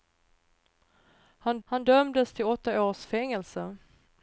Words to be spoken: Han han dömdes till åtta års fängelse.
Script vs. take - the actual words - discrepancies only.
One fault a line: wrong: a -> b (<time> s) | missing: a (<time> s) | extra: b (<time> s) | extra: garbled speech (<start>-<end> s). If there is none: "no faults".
no faults